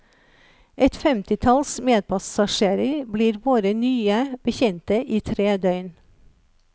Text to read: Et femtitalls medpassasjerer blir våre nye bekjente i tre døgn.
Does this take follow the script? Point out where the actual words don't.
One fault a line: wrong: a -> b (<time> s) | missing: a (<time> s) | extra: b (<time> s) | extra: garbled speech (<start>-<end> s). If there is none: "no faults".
no faults